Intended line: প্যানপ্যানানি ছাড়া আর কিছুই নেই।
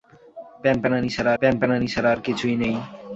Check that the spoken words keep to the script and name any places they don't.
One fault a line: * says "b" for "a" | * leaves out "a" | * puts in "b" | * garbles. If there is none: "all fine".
* puts in "প্যানপ্যানানি ছাড়া"